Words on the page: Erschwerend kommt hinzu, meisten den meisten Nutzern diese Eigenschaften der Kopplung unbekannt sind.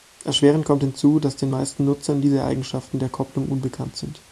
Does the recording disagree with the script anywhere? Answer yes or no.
yes